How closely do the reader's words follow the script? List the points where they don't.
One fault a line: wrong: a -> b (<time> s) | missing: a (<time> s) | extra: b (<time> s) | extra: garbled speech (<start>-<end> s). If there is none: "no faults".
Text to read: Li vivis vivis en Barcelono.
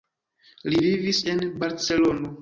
missing: vivis (1.2 s)